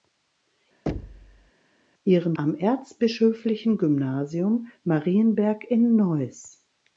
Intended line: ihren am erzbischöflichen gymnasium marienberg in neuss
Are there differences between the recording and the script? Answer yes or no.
no